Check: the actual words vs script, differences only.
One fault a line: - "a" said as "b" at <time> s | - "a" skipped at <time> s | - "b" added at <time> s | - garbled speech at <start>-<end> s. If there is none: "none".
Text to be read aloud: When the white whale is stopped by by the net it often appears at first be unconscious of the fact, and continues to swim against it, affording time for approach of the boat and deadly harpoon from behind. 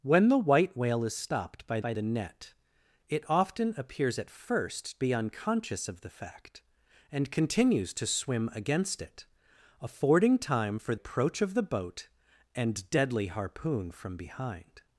none